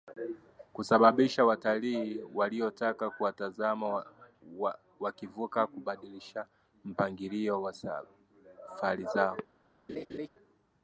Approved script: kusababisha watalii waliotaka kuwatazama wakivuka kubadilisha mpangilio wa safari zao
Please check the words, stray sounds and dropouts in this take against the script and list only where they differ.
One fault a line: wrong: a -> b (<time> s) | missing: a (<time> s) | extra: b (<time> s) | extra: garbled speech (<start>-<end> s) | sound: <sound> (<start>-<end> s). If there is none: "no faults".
sound: laugh (9.9-10.3 s)